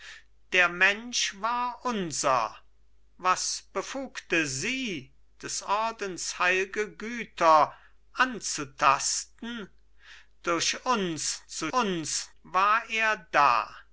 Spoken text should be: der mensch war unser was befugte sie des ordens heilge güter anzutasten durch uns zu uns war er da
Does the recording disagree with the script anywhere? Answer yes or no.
no